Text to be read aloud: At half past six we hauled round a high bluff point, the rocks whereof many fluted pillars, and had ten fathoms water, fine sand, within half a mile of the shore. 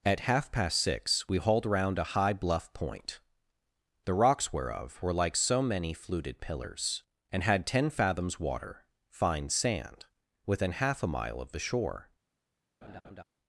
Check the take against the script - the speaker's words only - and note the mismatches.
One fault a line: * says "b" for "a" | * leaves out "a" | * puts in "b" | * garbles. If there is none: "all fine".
* puts in "were like so"